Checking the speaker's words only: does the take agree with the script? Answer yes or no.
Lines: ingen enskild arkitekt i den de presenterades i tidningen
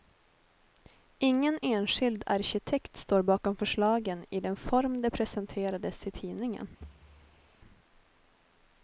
no